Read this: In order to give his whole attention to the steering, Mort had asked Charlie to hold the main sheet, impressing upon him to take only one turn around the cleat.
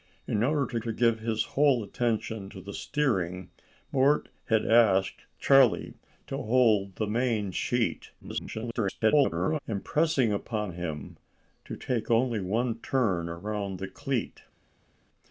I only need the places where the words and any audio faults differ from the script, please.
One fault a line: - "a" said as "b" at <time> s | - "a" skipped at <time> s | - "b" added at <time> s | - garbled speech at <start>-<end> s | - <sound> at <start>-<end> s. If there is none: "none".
- "to" added at 0.8 s
- garbled speech at 8.2-9.6 s